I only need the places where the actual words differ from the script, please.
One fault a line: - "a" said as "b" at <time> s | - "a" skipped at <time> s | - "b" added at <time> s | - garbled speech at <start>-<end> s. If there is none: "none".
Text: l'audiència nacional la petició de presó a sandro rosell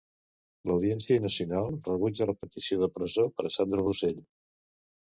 - "rebutja" added at 1.9 s
- "per" added at 3.4 s